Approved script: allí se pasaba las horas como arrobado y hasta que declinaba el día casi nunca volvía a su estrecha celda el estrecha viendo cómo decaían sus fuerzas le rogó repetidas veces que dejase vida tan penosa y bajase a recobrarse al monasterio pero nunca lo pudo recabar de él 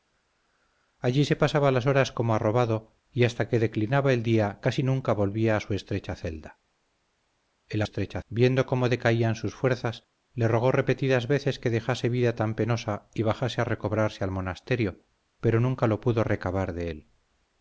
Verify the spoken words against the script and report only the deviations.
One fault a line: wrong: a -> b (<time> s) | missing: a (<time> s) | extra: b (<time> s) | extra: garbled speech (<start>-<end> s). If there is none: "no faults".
no faults